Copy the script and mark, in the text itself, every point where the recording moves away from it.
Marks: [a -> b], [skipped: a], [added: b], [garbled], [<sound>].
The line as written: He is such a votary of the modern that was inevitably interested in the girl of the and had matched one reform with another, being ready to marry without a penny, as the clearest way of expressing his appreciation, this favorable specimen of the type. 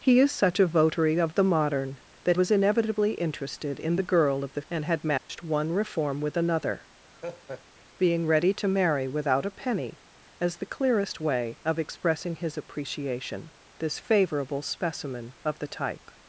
He is such a votary of the modern that was inevitably interested in the girl of the and had matched [dropout] one reform with another, [laugh] being ready to marry without a penny, as the clearest way of expressing his appreciation, this favorable specimen of the type.